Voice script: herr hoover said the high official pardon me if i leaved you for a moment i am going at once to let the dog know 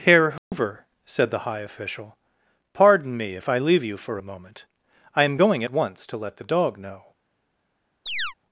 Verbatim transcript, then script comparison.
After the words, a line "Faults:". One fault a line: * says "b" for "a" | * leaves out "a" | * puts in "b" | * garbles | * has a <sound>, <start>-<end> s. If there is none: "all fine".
herr hoover said the high official pardon me if i leave you for a moment i am going at once to let the dog know
Faults:
* has a dropout, 0.4-0.5 s
* says "leave" for "leaved"
* has a chirp, 8.1-8.3 s